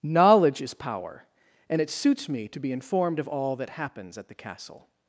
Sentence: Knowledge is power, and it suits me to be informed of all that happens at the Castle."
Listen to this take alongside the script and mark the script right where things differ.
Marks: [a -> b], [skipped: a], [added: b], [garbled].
Knowledge is power, and it suits me to be informed of all that happens at the Castle."